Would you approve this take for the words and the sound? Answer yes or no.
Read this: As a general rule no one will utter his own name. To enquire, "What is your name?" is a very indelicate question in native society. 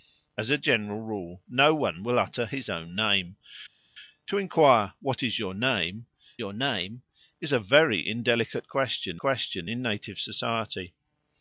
no